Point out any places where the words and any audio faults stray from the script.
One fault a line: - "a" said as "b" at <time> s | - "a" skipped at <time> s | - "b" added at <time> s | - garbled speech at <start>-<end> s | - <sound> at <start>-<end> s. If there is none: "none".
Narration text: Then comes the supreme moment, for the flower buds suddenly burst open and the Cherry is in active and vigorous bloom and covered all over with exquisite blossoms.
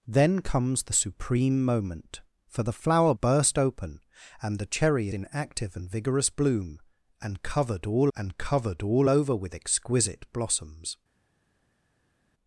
- "buds suddenly" skipped at 3.1 s
- "is" skipped at 5.1 s
- "and covered all" added at 8.1 s